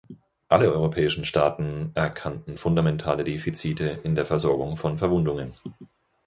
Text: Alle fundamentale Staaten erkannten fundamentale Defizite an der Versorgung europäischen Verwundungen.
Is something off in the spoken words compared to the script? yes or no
yes